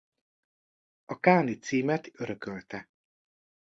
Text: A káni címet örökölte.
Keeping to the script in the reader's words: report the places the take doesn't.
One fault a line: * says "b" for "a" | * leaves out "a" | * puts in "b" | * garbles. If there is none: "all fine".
all fine